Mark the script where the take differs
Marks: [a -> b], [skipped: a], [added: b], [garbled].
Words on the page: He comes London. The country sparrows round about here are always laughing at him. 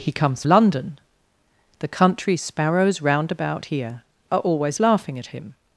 He comes London. The country sparrows round about here are always laughing at him.